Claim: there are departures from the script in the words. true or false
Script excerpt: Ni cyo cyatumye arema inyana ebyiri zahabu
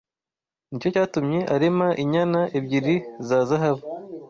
true